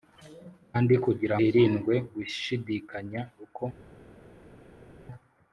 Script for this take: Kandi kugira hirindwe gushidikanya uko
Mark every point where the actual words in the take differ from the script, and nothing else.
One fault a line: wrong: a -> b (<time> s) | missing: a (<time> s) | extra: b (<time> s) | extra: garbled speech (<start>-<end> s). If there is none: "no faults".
no faults